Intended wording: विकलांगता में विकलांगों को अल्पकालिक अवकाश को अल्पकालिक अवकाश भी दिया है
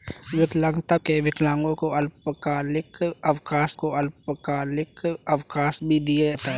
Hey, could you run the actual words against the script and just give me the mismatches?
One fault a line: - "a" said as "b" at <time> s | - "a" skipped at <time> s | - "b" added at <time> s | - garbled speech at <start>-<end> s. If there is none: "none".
none